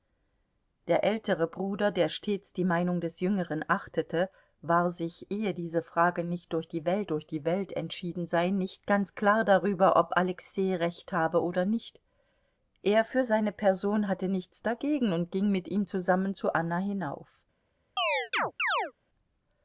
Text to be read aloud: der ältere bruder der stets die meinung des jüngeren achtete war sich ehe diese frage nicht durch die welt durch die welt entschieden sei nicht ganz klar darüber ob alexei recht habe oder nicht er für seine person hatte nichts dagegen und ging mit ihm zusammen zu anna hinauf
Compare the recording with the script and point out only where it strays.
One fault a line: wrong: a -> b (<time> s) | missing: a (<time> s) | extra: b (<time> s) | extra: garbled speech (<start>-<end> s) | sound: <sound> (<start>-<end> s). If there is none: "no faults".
sound: chirp (18.0-18.9 s)